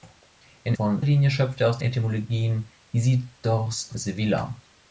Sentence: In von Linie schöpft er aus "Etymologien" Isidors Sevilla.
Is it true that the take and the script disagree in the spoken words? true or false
false